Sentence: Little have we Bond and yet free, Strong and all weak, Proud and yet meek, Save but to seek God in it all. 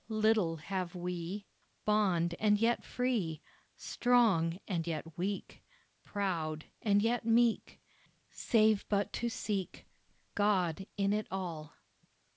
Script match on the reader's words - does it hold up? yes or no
no